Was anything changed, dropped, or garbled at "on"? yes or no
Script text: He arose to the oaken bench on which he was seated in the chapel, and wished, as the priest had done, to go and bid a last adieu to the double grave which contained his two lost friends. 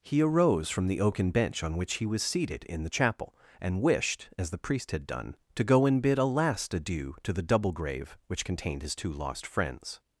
no